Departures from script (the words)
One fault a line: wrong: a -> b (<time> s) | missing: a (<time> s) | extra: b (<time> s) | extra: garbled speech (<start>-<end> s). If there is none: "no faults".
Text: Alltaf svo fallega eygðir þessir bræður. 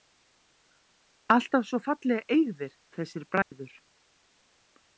no faults